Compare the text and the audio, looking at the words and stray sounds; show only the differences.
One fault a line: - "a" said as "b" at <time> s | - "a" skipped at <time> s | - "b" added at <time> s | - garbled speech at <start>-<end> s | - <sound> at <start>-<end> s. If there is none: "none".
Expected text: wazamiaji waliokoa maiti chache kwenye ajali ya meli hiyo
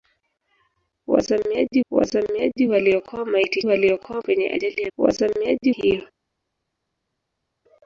- "wazamiaji" added at 1.9 s
- "chache" said as "waliokoa" at 3.6 s
- "meli" said as "wazamiaji" at 5.0 s